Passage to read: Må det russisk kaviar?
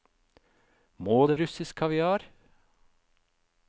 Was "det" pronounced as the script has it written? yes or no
yes